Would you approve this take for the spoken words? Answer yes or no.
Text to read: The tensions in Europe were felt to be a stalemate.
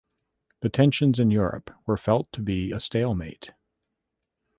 yes